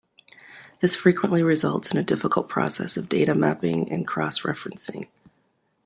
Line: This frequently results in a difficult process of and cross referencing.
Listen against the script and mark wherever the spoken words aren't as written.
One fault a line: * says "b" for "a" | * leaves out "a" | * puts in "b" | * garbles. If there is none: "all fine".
* puts in "data mapping"